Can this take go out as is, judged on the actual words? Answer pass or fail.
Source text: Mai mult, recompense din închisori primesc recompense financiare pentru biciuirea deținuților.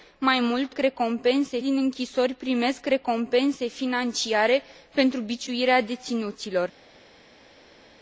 pass